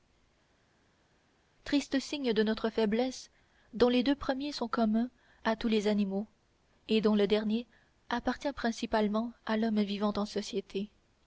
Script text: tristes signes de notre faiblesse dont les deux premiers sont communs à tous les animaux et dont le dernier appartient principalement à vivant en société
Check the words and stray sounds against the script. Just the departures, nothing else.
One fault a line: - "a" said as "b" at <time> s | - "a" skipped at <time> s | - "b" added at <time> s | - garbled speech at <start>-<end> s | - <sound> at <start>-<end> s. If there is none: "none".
- "l'homme" added at 9.5 s